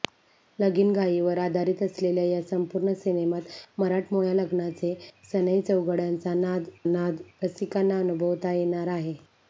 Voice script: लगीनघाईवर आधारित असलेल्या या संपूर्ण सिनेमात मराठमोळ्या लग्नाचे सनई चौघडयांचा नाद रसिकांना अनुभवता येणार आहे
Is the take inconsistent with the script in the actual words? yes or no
yes